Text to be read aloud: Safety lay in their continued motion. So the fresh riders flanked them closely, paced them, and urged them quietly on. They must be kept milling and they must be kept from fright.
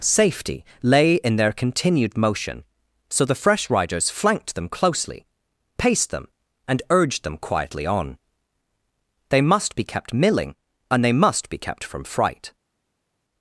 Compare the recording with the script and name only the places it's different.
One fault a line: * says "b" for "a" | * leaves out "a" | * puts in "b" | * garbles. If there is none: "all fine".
all fine